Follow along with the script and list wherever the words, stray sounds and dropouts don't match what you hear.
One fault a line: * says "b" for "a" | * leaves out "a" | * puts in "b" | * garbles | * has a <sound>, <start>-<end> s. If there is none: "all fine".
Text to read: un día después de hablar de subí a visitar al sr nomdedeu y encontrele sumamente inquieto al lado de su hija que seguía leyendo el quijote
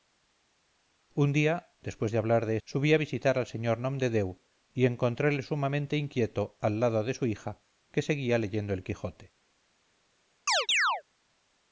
* has a chirp, 10.5-11.0 s